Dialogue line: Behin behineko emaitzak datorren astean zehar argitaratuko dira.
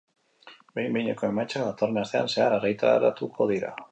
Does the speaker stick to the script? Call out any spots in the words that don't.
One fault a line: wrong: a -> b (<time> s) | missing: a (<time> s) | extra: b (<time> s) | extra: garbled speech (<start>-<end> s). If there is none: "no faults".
no faults